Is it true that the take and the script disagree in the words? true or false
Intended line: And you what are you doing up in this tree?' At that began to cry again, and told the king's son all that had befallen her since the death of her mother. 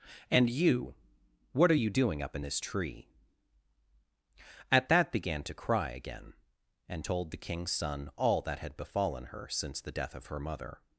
false